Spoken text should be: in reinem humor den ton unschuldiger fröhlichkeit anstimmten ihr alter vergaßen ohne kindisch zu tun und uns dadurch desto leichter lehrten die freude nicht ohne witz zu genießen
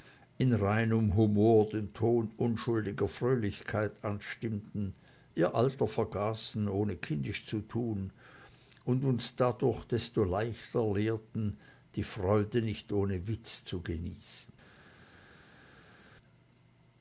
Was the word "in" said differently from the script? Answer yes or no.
no